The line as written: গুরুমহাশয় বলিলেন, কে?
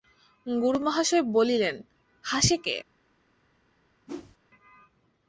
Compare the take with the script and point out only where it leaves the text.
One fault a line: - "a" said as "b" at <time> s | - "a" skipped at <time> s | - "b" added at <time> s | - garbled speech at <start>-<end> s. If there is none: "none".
- "হাসে" added at 2.2 s